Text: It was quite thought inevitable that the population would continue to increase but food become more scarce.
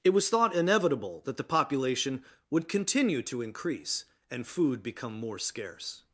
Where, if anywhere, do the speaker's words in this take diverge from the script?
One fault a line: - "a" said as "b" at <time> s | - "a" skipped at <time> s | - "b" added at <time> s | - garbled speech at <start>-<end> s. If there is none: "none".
- "quite" skipped at 0.3 s
- "but" said as "and" at 4.3 s